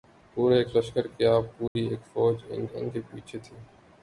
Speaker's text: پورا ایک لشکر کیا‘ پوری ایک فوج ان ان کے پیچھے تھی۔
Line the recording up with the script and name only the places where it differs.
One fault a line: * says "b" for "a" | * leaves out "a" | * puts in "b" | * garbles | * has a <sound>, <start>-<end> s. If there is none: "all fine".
* has a dropout, 1.7-1.8 s